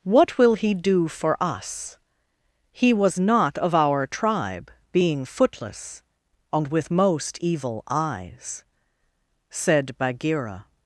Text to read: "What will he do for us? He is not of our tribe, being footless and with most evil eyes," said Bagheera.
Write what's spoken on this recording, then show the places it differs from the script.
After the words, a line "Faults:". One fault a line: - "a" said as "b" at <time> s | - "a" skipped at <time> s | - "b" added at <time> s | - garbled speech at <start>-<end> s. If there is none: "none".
"What will he do for us? He was not of our tribe, being footless and with most evil eyes," said Bagheera.
Faults:
- "is" said as "was" at 2.9 s